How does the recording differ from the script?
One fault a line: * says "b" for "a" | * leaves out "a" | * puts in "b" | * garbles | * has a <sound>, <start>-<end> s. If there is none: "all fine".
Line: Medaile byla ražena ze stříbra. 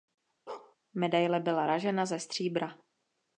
* has a bark, 0.5-0.8 s